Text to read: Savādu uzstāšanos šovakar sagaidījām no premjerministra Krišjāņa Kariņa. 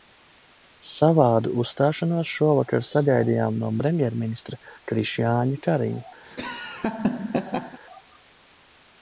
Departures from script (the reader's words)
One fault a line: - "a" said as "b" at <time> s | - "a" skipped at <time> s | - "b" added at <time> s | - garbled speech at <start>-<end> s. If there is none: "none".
none